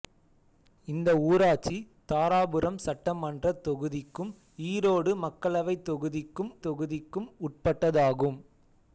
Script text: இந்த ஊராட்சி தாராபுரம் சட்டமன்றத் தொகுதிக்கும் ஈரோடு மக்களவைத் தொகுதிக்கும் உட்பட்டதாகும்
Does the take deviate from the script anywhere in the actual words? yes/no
yes